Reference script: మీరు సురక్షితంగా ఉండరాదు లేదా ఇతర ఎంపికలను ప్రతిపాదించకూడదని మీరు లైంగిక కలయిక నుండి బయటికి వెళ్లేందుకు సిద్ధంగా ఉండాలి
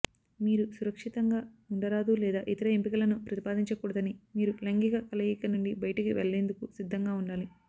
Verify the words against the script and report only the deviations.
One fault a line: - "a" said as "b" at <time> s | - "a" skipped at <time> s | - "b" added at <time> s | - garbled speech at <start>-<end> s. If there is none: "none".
none